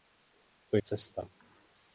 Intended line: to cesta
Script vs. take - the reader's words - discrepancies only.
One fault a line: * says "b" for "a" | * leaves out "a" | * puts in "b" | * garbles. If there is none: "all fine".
all fine